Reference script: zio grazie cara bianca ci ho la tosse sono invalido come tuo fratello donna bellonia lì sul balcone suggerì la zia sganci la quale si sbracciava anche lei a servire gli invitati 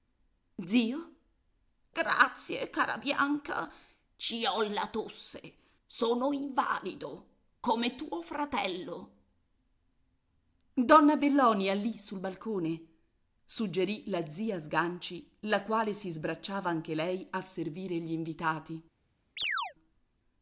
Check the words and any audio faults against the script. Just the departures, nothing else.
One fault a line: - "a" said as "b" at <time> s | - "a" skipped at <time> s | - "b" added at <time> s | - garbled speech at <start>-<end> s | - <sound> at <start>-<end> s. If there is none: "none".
- chirp at 19.4-19.7 s